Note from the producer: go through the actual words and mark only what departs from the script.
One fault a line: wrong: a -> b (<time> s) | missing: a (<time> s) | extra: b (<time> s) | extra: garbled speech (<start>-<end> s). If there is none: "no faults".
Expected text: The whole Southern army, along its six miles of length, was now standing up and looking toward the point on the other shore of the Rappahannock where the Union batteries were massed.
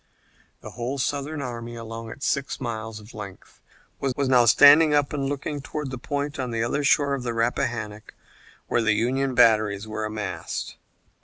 extra: was (4.1 s)